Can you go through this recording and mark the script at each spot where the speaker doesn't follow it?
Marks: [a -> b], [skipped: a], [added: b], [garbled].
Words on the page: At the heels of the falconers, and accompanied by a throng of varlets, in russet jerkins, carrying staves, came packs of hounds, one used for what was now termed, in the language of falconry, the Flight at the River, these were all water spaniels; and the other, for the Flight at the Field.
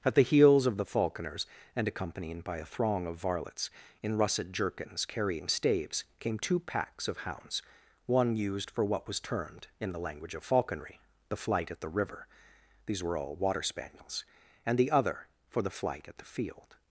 At the heels of the falconers, and accompanied by a throng of varlets, in russet jerkins, carrying staves, came [added: two] packs of hounds, one used for what was [skipped: now] termed, in the language of falconry, the Flight at the River, these were all water spaniels; and the other, for the Flight at the Field.